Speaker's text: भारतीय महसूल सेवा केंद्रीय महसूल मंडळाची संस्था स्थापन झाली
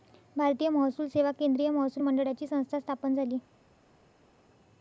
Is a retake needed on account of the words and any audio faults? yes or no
no